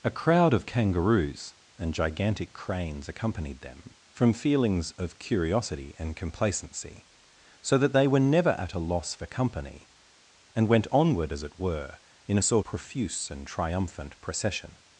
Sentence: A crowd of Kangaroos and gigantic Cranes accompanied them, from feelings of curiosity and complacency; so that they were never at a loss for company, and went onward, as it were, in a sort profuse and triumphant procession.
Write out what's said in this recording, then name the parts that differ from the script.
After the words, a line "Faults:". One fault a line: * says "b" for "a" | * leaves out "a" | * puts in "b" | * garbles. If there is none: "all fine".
A crowd of Kangaroos and gigantic Cranes accompanied them, from feelings of curiosity and complacency; so that they were never at a loss for company, and went onward, as it were, in a sort profuse and triumphant procession.
Faults:
all fine